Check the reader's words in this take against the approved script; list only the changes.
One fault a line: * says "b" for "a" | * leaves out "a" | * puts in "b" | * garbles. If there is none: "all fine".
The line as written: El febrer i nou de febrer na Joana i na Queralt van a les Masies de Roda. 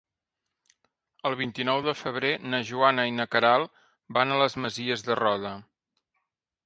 * says "vint" for "febrer"